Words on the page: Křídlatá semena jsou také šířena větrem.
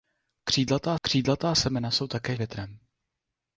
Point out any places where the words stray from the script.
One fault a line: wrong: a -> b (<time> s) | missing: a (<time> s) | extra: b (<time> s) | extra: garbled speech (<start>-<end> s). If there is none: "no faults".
extra: křídlatá (1.0 s)
missing: šířena (2.4 s)